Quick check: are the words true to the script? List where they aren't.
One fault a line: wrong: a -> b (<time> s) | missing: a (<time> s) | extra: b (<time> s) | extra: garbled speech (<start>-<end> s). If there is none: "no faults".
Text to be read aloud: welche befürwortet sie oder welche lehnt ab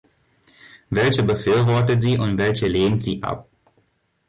wrong: oder -> und (2.2 s)
extra: sie (3.0 s)